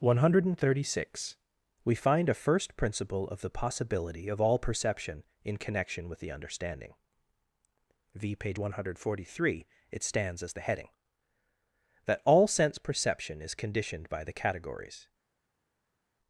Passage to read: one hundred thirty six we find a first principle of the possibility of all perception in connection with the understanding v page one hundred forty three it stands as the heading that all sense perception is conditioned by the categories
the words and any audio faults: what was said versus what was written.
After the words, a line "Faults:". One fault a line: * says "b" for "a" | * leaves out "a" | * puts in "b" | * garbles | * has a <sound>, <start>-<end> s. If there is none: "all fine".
one hundred thirty six we find a first principle of the possibility of all perception in connection with the understanding v page one hundred forty three it stands as the heading that all sense perception is conditioned by the categories
Faults:
all fine